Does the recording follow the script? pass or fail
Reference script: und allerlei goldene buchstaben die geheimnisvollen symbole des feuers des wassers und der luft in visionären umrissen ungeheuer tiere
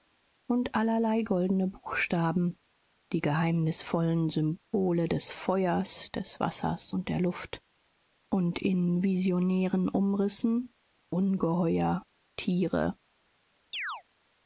fail